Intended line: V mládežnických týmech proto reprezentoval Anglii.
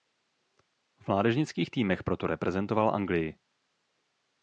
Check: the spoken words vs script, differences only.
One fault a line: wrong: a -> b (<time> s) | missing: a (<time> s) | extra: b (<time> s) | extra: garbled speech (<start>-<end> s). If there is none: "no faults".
no faults